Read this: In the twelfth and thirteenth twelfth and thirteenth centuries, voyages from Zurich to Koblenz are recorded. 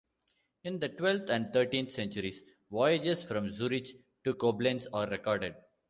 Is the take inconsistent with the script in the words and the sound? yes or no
yes